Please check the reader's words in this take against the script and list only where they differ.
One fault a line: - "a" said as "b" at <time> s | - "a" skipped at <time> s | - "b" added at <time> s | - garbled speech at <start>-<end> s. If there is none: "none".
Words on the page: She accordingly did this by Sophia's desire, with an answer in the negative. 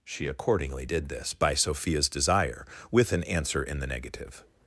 none